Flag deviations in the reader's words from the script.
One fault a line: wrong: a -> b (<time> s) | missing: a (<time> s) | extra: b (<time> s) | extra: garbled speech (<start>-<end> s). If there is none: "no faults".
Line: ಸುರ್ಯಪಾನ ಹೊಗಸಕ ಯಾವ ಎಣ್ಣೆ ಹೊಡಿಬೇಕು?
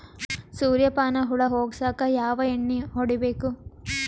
extra: ಹುಳ (1.2 s)